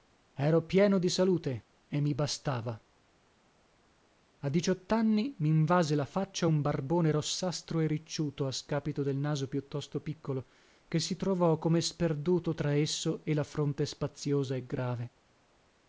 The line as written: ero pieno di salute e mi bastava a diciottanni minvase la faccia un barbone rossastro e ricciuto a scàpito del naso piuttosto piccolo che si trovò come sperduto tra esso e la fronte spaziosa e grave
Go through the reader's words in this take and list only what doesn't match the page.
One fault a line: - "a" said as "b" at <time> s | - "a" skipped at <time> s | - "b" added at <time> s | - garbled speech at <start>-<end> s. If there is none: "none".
none